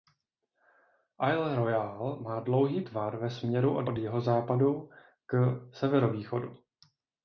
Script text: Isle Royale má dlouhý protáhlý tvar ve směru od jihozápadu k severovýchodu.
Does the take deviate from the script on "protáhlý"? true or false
true